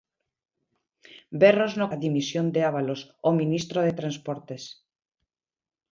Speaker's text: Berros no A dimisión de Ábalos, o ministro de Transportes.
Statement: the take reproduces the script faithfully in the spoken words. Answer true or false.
true